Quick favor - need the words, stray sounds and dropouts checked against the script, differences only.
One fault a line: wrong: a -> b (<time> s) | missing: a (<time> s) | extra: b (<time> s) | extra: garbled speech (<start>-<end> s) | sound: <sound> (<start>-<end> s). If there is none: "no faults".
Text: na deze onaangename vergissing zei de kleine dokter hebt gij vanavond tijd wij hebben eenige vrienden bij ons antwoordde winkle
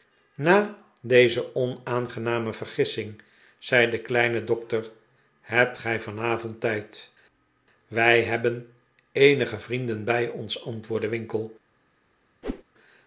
sound: whoosh (12.4-12.6 s)